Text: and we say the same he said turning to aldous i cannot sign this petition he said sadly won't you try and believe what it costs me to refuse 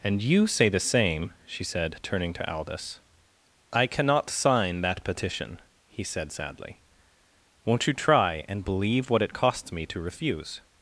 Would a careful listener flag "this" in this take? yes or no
yes